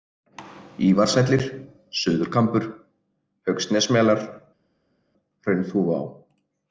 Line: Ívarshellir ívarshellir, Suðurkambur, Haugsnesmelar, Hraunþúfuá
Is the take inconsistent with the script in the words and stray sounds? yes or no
yes